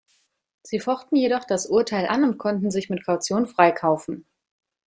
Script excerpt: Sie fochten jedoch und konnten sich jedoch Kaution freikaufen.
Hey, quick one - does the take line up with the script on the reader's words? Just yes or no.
no